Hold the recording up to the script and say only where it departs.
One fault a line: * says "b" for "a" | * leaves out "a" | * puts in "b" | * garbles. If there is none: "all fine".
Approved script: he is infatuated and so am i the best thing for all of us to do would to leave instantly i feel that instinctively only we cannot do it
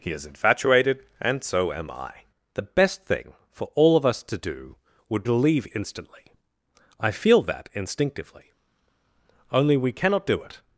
all fine